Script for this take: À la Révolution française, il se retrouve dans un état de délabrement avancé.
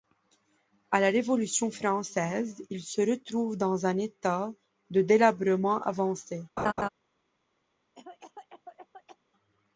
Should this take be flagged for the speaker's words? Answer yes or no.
no